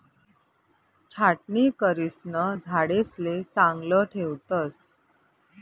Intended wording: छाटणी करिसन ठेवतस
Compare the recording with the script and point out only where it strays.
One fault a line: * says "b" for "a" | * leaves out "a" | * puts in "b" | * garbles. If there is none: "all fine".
* puts in "झाडेसले चांगलं"